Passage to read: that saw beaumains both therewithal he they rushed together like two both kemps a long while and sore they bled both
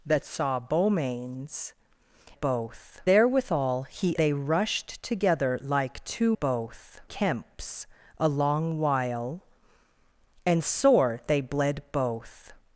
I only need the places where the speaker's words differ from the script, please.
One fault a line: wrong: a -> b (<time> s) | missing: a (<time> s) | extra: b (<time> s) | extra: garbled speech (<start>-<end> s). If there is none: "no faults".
no faults